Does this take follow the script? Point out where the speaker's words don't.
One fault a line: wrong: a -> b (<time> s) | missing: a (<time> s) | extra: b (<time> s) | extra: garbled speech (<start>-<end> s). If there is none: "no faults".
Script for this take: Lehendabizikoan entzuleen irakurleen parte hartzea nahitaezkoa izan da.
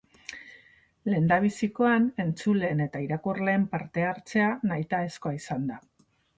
extra: eta (2.9 s)